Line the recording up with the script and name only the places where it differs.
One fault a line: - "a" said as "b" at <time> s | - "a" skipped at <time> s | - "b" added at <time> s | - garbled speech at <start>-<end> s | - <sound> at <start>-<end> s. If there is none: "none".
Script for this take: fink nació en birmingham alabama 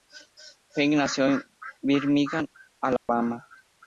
- dropout at 3.0-3.1 s